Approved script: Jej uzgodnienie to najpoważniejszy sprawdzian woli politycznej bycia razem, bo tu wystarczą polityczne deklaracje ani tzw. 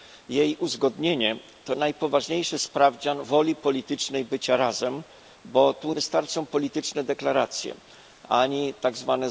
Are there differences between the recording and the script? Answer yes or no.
no